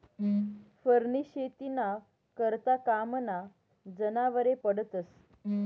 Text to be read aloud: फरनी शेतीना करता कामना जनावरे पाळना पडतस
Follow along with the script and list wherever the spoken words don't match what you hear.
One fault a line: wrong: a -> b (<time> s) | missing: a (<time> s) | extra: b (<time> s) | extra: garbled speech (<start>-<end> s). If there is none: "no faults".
missing: पाळना (4.5 s)